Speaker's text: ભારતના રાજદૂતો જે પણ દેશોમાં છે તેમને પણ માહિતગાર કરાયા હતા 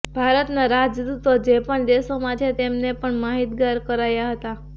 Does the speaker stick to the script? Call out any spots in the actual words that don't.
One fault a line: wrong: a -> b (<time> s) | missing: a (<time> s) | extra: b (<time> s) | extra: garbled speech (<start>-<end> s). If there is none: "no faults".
no faults